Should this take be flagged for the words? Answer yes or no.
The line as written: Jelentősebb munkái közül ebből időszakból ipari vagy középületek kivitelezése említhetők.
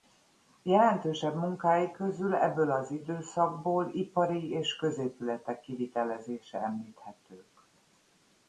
yes